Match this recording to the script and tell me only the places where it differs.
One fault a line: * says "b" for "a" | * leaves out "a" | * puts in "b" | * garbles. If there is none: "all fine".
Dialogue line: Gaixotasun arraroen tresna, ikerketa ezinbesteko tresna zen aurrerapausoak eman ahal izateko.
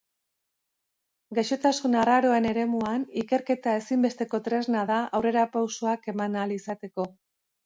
* says "eremuan" for "tresna"
* says "da" for "zen"